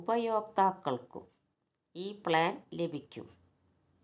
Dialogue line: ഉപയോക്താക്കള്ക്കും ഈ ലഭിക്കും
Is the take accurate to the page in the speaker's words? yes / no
no